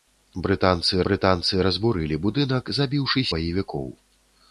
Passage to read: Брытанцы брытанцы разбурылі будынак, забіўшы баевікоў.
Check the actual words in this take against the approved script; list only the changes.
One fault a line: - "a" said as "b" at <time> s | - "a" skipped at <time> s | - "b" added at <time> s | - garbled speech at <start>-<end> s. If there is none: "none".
none